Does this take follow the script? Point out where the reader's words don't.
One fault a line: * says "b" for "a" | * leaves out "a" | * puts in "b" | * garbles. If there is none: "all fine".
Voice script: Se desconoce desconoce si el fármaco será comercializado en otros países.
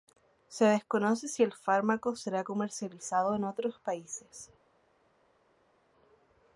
* leaves out "desconoce"